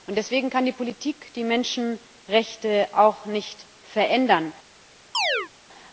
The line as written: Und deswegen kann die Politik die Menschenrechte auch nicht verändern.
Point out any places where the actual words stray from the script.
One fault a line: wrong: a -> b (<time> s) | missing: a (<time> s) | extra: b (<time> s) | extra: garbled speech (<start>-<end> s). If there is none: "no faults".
no faults